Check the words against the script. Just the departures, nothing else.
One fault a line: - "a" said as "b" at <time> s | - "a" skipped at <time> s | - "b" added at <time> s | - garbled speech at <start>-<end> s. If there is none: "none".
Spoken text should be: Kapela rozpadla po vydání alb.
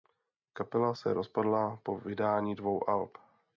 - "se" added at 0.9 s
- "dvou" added at 2.6 s